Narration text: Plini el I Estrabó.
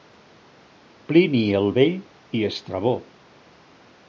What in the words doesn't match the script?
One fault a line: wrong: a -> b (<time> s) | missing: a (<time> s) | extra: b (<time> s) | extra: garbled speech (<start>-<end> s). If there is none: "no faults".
extra: Vell (1.8 s)